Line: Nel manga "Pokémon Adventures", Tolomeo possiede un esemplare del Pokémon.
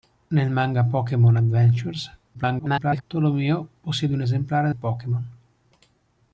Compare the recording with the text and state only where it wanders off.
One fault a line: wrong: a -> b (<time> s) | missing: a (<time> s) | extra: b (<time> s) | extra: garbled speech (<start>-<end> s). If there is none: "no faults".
extra: garbled speech (2.3-3.0 s)
missing: del (4.7 s)